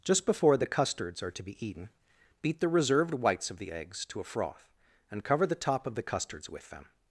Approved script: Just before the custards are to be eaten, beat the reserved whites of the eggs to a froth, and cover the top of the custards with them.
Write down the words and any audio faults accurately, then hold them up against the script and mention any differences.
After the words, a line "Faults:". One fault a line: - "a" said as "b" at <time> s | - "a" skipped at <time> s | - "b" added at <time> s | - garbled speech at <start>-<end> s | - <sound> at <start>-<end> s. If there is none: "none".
Just before the custards are to be eaten, beat the reserved whites of the eggs to a froth, and cover the top of the custards with them.
Faults:
none